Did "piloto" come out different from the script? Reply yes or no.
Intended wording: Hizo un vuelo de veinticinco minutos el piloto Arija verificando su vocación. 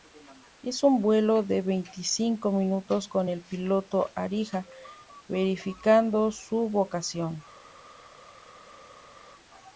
no